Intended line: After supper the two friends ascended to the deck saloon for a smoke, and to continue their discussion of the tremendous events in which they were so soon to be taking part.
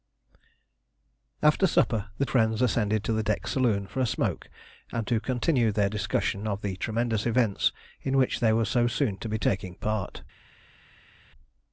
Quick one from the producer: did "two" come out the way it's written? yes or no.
no